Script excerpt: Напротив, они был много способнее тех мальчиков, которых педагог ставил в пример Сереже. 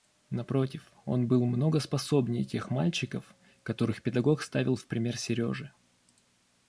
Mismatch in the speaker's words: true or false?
true